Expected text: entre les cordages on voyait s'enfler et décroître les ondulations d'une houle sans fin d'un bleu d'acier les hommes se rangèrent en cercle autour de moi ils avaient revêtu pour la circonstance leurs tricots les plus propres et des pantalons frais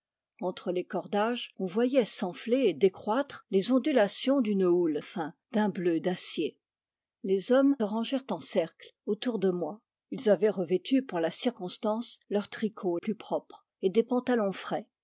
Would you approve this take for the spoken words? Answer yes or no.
no